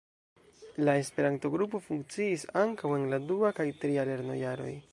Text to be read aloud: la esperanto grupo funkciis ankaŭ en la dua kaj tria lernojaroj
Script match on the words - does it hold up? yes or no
yes